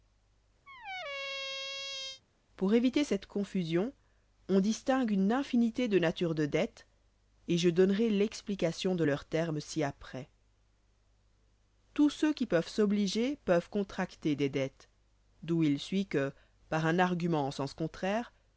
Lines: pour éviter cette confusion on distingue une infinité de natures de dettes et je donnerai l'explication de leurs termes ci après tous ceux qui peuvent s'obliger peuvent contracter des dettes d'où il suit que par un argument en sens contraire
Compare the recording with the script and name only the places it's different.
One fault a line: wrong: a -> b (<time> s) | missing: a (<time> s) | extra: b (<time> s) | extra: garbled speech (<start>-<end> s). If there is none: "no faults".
no faults